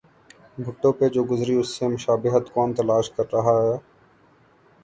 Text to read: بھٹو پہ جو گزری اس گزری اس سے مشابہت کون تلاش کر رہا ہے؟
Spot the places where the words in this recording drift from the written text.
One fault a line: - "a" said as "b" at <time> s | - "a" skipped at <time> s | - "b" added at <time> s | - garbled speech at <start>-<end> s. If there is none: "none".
- "گزری اس" skipped at 1.7 s